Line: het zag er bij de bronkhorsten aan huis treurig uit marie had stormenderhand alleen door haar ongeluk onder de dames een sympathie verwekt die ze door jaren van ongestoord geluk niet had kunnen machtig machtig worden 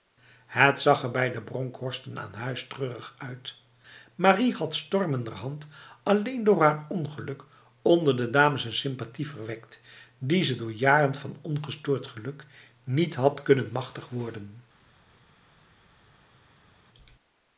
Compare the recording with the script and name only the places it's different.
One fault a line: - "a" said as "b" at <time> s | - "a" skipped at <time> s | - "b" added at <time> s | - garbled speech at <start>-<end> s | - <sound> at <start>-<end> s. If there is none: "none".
- "machtig" skipped at 14.1 s